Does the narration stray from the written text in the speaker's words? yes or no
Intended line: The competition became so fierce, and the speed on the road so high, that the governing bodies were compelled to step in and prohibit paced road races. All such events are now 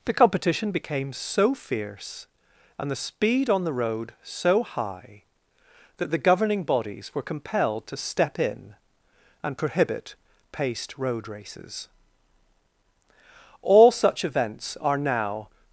no